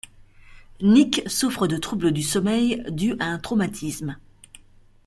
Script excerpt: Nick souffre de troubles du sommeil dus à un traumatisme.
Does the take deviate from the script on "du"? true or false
false